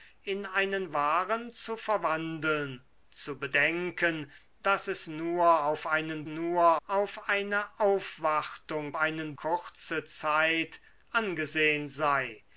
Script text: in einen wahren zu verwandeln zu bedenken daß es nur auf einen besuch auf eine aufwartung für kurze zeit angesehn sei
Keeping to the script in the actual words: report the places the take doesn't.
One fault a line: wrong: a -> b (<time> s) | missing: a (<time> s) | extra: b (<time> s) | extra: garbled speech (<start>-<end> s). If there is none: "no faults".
wrong: besuch -> nur (6.2 s)
wrong: für -> einen (8.9 s)